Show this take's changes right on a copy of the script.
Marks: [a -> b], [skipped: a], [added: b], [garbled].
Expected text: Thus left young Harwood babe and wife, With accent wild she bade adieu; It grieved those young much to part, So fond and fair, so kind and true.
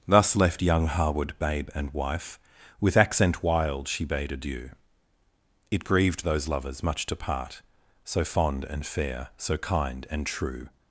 Thus left young Harwood babe and wife, With accent wild she bade adieu; It grieved those [young -> lovers] much to part, So fond and fair, so kind and true.